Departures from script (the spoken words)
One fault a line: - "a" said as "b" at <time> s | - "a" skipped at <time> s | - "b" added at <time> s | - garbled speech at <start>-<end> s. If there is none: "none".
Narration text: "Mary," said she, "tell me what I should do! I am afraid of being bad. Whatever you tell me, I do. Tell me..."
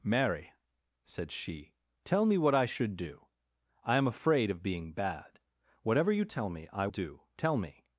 none